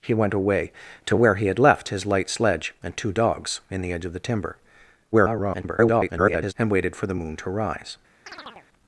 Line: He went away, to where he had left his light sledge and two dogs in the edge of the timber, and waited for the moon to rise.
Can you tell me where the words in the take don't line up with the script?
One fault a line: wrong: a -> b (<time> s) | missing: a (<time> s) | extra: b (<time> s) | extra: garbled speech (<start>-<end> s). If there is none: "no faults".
extra: garbled speech (5.1-6.5 s)